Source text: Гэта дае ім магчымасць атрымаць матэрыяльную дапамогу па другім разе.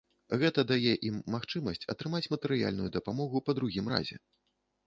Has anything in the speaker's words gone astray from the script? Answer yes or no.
no